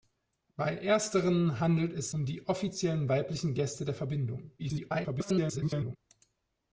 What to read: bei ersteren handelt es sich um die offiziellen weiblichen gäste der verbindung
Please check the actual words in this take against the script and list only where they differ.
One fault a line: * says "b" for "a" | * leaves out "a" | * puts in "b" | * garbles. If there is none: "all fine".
* leaves out "sich"
* garbles